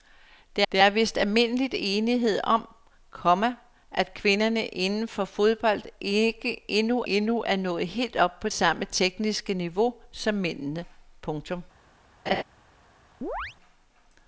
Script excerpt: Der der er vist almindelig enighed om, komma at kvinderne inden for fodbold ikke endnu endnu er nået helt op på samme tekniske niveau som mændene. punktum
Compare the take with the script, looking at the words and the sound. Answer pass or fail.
fail